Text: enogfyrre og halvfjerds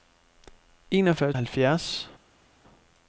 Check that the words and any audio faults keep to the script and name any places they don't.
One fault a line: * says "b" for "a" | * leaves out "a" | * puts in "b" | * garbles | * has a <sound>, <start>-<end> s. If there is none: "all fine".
all fine